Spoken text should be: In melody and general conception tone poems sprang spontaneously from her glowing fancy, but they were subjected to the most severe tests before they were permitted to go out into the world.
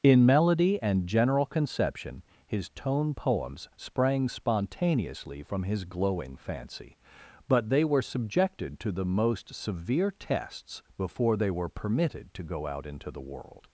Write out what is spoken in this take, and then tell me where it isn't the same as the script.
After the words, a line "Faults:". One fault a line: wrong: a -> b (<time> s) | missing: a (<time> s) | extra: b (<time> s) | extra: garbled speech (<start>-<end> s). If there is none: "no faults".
In melody and general conception his tone poems sprang spontaneously from his glowing fancy, but they were subjected to the most severe tests before they were permitted to go out into the world.
Faults:
extra: his (2.5 s)
wrong: her -> his (5.6 s)